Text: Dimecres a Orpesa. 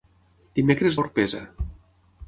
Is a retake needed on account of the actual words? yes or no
no